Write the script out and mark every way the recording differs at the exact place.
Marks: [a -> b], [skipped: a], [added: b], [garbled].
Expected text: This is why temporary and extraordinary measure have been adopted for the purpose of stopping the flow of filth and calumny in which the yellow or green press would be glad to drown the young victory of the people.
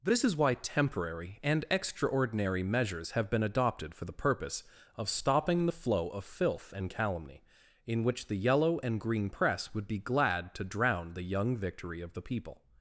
This is why temporary and extraordinary [measure -> measures] have been adopted for the purpose of stopping the flow of filth and calumny in which the yellow [or -> and] green press would be glad to drown the young victory of the people.